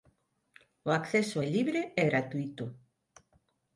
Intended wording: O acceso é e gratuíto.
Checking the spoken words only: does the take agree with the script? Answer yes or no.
no